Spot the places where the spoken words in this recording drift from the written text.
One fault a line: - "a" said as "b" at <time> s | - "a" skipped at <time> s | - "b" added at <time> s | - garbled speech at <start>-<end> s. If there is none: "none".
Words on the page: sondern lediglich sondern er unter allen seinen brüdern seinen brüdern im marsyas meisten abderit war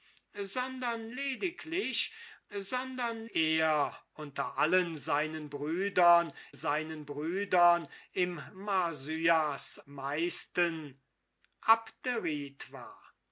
none